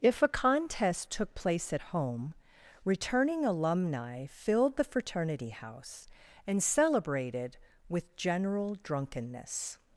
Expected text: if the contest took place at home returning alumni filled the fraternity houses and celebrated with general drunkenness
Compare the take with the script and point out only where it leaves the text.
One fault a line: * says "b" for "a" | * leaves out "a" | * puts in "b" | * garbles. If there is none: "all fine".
* says "a" for "the"
* says "house" for "houses"